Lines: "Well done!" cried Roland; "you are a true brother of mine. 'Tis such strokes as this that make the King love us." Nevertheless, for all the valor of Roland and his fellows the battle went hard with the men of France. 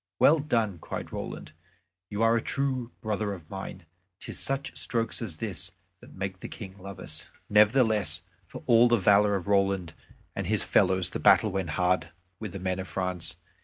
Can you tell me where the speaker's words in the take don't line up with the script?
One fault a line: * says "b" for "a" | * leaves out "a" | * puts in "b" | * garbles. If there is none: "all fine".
all fine